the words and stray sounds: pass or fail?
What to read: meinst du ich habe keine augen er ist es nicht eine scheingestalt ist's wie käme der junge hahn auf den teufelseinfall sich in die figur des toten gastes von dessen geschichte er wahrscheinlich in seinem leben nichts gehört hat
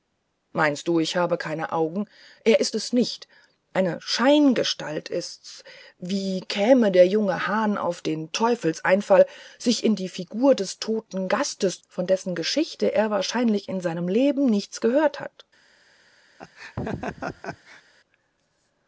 fail